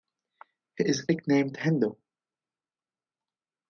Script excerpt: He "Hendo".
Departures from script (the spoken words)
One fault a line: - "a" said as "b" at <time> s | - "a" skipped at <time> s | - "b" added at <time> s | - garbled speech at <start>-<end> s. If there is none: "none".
- "is nicknamed" added at 0.9 s